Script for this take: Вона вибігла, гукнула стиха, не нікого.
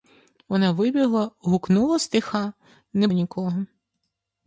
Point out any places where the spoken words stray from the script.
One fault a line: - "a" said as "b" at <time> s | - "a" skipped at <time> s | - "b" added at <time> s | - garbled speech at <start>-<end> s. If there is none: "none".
none